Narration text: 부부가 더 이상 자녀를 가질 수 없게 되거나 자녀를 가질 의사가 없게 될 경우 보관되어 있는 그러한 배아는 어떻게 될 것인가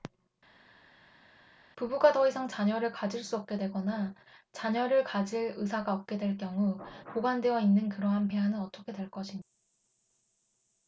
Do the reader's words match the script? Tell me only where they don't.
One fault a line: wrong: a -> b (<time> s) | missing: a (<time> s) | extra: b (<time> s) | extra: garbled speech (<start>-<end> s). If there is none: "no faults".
no faults